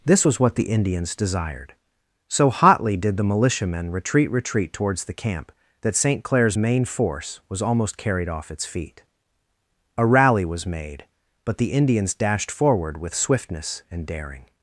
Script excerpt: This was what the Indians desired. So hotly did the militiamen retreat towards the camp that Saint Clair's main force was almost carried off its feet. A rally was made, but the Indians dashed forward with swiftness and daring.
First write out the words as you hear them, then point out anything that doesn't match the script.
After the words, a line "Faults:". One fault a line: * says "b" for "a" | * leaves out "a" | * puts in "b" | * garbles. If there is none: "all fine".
This was what the Indians desired. So hotly did the militiamen retreat retreat towards the camp that Saint Clair's main force was almost carried off its feet. A rally was made, but the Indians dashed forward with swiftness and daring.
Faults:
* puts in "retreat"